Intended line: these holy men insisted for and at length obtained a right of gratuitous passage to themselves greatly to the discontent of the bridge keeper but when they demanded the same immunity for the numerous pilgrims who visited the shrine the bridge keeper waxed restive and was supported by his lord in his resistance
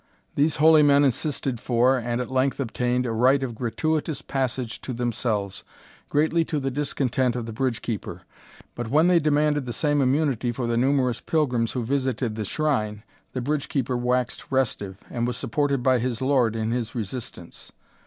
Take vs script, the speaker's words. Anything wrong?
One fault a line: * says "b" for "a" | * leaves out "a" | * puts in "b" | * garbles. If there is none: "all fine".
all fine